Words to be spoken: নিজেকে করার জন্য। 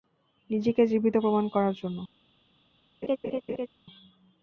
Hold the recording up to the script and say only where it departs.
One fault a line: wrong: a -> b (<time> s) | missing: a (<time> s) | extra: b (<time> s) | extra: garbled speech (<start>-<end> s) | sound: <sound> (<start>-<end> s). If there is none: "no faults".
extra: জীবিত প্রমাণ (0.9 s)
sound: laugh (3.0-3.7 s)